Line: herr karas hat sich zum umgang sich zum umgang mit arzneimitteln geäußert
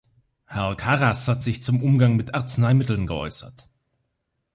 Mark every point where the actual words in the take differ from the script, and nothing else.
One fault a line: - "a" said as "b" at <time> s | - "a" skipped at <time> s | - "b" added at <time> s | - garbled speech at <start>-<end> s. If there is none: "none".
- "sich zum umgang" skipped at 2.2 s